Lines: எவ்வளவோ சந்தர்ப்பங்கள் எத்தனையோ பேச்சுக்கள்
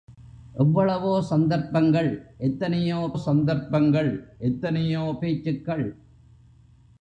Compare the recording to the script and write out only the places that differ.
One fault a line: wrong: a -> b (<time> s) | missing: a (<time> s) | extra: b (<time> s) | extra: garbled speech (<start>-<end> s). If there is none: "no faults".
extra: சந்தர்ப்பங்கள் எத்தனையோ (3.2 s)